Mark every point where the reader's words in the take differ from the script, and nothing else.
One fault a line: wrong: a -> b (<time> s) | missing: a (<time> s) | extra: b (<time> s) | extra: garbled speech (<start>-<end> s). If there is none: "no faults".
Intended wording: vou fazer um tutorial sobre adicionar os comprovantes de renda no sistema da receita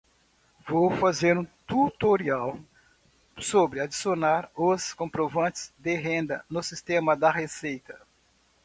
no faults